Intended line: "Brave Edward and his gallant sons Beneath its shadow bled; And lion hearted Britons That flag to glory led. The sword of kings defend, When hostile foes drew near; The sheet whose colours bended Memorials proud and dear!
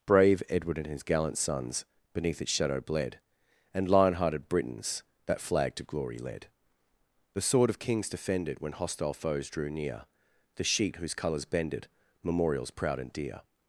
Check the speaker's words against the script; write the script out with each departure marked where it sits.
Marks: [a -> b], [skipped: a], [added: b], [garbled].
"Brave Edward and his gallant sons Beneath its shadow bled; And lion hearted Britons That flag to glory led. The sword of kings [defend, -> defended] When hostile foes drew near; The sheet whose colours bended Memorials proud and dear!